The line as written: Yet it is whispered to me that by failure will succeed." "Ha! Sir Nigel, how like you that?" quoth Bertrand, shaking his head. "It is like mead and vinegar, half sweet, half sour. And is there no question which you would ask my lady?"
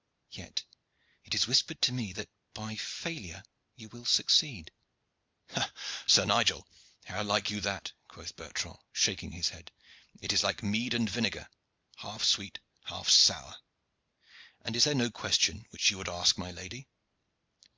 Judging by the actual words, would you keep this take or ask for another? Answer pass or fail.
fail